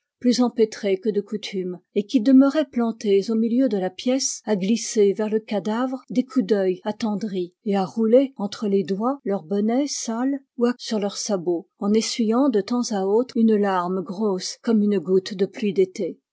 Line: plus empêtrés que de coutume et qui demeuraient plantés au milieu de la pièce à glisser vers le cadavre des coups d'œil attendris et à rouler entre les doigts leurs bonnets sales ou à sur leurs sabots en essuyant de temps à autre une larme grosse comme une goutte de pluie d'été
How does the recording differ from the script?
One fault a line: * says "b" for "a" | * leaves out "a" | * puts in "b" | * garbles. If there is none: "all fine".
all fine